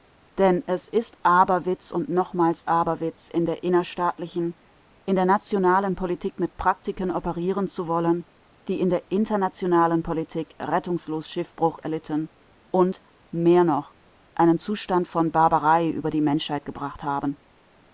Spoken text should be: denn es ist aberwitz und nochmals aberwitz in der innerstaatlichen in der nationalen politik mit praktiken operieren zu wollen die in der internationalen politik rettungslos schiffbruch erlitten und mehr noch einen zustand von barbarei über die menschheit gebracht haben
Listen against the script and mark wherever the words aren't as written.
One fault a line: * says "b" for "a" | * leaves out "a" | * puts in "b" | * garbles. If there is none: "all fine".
all fine